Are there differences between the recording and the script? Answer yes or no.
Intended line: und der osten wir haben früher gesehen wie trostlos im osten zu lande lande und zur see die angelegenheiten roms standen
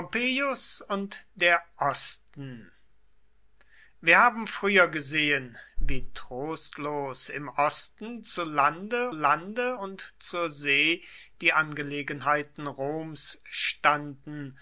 no